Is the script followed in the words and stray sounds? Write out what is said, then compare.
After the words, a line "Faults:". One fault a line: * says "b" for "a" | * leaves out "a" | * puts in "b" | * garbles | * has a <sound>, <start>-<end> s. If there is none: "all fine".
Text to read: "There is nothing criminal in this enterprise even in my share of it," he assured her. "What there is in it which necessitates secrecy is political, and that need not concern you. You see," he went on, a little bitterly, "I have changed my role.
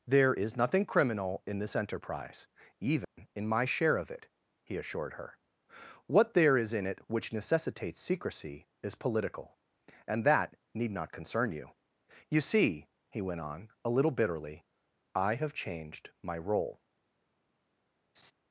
"There is nothing criminal in this enterprise even in my share of it," he assured her. "What there is in it which necessitates secrecy is political, and that need not concern you. You see," he went on, a little bitterly, "I have changed my role.
Faults:
* has a dropout, 3.0-3.2 s
* has a laugh, 18.1-18.3 s